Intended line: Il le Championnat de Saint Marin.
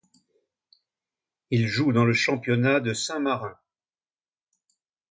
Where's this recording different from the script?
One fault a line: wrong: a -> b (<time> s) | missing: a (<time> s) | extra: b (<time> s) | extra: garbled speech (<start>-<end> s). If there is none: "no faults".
extra: joue dans (1.7 s)